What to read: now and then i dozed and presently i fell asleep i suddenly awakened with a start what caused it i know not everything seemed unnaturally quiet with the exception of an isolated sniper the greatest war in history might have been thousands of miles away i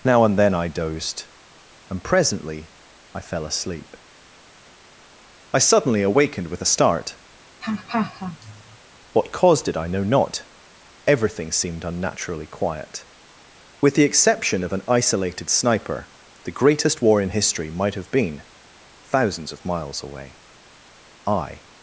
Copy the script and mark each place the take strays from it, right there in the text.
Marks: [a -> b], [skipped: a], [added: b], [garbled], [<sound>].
now and then i dozed and presently i fell asleep i suddenly awakened with a start [laugh] what caused it i know not everything seemed unnaturally quiet with the exception of an isolated sniper the greatest war in history might have been thousands of miles away i